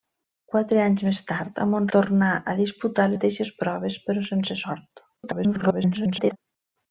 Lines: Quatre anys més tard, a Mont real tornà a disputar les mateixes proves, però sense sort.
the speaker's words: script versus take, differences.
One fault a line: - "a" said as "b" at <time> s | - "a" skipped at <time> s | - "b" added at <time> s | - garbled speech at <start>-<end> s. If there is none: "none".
- "real" skipped at 1.9 s
- "les" skipped at 3.1 s
- garbled speech at 5.2-6.4 s